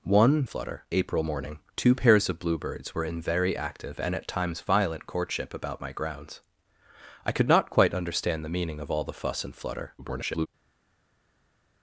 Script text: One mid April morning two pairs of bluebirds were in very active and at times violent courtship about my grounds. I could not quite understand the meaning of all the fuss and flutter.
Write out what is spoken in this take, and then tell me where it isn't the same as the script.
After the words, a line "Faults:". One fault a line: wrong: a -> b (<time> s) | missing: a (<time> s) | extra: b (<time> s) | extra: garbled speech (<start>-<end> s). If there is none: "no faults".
One flutter April morning two pairs of bluebirds were in very active and at times violent courtship about my grounds. I could not quite understand the meaning of all the fuss and flutter. [garbled]
Faults:
wrong: mid -> flutter (0.4 s)
extra: garbled speech (10.0-10.5 s)